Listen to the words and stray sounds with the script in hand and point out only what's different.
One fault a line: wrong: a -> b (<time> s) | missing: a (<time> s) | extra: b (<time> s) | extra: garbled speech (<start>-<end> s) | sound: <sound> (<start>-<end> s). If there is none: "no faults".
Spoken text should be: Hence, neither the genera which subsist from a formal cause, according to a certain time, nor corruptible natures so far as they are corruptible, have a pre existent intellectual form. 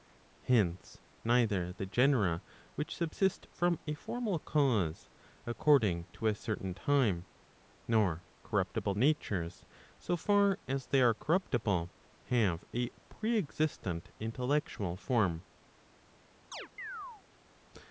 sound: chirp (16.5-17.2 s)